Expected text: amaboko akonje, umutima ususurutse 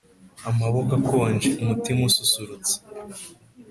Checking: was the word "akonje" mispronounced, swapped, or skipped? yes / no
no